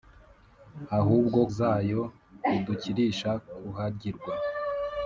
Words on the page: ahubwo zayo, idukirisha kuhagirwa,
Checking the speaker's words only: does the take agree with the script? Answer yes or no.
yes